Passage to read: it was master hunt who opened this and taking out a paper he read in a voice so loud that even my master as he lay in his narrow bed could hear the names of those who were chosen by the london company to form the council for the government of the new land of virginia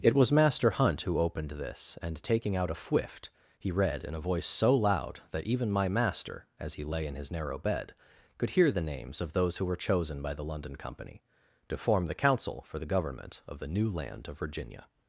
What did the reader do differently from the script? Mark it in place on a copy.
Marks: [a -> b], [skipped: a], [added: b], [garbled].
it was master hunt who opened this and taking out a [paper -> fwift] he read in a voice so loud that even my master as he lay in his narrow bed could hear the names of those who were chosen by the london company to form the council for the government of the new land of virginia